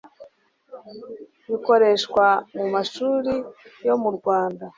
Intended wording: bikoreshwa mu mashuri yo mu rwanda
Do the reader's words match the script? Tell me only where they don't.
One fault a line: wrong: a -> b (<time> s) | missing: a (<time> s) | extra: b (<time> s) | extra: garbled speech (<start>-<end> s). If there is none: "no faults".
no faults